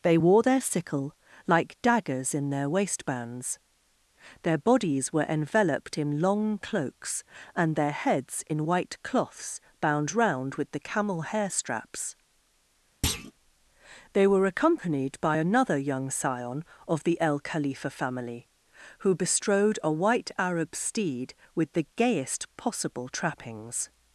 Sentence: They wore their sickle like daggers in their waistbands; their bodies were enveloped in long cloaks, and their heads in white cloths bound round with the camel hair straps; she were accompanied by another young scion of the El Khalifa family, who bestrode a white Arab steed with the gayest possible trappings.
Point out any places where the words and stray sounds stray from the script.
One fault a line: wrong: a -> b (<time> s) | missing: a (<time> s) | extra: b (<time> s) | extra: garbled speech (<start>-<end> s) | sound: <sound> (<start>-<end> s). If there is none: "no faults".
sound: thud (13.0-13.3 s)
wrong: she -> they (14.1 s)